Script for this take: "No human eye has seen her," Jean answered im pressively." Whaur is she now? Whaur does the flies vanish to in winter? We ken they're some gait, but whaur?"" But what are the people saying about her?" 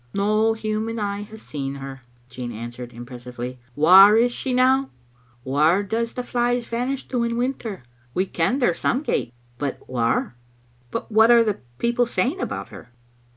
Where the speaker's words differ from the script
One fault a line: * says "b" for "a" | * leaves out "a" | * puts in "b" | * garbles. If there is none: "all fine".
all fine